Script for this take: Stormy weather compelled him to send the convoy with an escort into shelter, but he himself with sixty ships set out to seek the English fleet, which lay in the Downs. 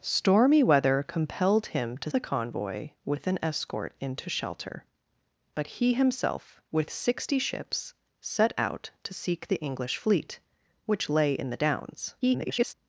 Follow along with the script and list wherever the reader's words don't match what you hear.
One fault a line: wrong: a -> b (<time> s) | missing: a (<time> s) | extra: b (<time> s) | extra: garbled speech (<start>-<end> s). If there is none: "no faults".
missing: send (2.1 s)
extra: garbled speech (12.2-12.7 s)